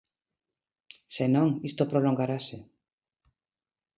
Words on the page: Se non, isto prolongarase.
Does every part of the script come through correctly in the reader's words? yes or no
yes